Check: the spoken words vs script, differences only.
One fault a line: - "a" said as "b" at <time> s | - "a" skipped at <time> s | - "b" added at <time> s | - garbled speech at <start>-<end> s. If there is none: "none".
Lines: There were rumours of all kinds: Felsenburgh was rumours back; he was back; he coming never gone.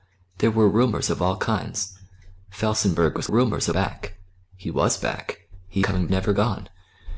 none